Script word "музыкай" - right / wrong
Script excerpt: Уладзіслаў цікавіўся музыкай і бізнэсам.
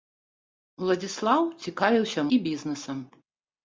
wrong